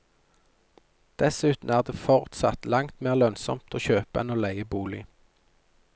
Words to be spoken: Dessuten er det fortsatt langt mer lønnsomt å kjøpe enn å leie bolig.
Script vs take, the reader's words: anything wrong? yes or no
no